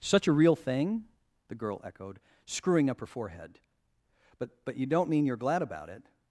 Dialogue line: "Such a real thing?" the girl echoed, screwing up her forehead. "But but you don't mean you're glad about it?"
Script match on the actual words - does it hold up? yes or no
yes